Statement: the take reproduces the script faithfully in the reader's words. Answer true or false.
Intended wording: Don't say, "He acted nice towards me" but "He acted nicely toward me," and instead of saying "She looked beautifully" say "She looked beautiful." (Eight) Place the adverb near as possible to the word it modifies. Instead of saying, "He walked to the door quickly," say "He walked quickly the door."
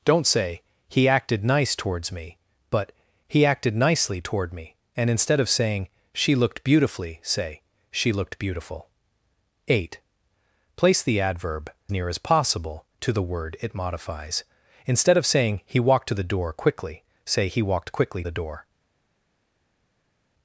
true